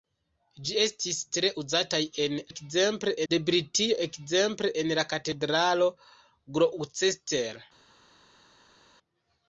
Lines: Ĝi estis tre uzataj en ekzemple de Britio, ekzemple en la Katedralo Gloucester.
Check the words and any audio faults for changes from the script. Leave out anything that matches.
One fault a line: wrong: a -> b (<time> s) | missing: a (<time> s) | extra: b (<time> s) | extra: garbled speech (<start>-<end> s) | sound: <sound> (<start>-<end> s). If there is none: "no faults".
no faults